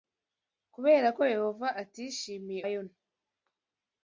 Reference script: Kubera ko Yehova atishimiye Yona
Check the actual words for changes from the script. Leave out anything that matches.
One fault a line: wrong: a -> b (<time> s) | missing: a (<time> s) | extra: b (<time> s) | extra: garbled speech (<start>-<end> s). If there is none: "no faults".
no faults